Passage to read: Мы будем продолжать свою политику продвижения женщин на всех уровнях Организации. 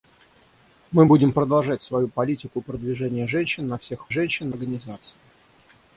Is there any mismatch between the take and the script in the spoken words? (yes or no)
yes